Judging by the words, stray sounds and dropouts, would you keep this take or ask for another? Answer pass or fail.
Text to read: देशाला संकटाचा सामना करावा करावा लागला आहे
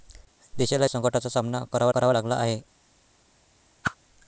fail